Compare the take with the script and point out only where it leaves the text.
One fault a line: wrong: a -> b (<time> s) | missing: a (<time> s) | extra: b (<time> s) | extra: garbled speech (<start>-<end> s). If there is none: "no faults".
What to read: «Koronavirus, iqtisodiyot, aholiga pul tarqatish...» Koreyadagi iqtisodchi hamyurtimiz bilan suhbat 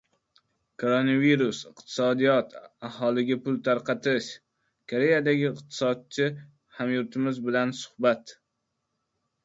no faults